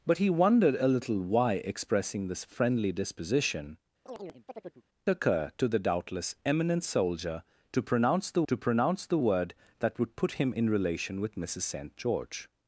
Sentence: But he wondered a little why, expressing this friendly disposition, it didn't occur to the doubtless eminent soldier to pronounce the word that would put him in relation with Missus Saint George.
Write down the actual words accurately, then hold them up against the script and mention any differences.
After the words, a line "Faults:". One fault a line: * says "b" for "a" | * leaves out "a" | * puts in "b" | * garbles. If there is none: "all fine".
But he wondered a little why, expressing this friendly disposition, occur to the doubtless eminent soldier to pronounce the to pronounce the word that would put him in relation with Missus Saint George.
Faults:
* leaves out "it didn't"
* puts in "to pronounce the"